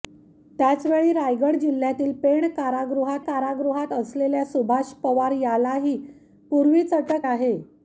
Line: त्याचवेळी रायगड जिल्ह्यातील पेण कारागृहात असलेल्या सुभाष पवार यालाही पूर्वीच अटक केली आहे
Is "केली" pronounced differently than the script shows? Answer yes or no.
yes